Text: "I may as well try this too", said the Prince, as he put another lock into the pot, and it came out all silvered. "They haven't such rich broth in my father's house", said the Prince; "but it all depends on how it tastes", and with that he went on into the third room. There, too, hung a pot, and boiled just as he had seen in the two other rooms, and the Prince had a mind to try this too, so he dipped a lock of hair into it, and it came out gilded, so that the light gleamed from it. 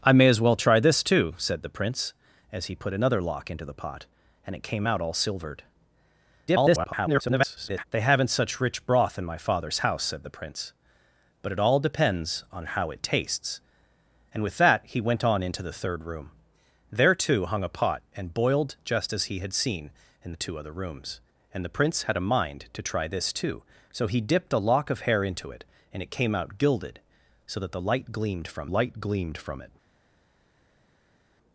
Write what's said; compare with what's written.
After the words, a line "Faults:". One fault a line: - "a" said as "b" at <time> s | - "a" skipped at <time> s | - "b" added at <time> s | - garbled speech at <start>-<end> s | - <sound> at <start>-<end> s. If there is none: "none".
"I may as well try this too", said the Prince, as he put another lock into the pot, and it came out all silvered. [garbled] "They haven't such rich broth in my father's house", said the Prince; "but it all depends on how it tastes", and with that he went on into the third room. There, too, hung a pot, and boiled just as he had seen in the two other rooms, and the Prince had a mind to try this too, so he dipped a lock of hair into it, and it came out gilded, so that the light gleamed from light gleamed from it.
Faults:
- garbled speech at 6.5-7.8 s
- "light gleamed from" added at 28.7 s